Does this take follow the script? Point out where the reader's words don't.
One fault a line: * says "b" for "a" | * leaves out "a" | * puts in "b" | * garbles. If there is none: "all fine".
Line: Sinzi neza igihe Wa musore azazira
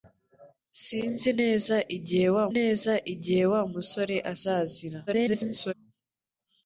* puts in "neza igihe Wa"
* garbles